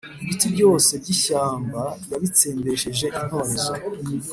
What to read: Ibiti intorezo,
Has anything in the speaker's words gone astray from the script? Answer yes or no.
yes